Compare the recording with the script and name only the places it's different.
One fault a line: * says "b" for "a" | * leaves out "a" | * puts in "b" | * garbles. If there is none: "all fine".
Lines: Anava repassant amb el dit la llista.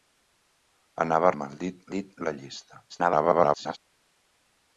* leaves out "repassant"
* puts in "dit"
* garbles